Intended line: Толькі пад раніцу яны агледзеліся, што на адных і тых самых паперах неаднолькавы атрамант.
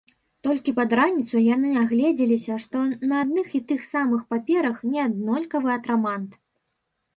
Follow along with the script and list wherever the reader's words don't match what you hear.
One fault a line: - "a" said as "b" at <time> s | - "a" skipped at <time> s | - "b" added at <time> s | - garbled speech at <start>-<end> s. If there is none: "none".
none